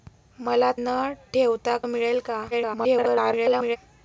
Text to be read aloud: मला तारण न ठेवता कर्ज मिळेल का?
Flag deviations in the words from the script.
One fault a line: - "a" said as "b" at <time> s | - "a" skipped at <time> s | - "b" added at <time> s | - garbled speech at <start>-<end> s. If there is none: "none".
- "तारण" skipped at 0.7 s
- "कर्ज" skipped at 1.8 s
- garbled speech at 2.5-3.8 s